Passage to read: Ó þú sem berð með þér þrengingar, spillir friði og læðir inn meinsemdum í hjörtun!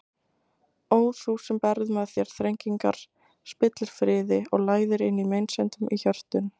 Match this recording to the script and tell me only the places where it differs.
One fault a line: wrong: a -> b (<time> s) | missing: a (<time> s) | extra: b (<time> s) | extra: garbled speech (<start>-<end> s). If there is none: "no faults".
no faults